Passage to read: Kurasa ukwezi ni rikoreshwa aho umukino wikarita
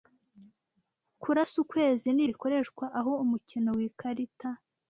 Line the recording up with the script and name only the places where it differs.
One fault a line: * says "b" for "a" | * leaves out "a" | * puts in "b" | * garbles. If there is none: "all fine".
all fine